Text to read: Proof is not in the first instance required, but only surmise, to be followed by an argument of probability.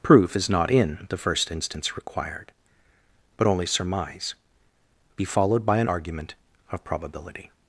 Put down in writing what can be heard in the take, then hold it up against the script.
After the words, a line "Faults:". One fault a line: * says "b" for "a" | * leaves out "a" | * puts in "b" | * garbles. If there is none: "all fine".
Proof is not in the first instance required, but only surmise, be followed by an argument of probability.
Faults:
* leaves out "to"